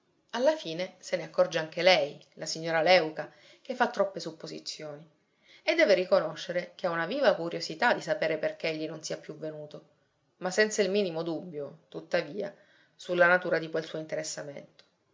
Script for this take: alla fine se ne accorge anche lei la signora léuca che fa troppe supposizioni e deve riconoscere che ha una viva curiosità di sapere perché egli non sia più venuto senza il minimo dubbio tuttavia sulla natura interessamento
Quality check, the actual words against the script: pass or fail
fail